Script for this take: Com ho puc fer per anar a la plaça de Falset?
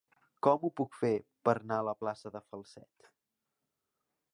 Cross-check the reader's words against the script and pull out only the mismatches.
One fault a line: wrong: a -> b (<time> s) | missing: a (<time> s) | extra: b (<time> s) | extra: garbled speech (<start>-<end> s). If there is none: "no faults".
no faults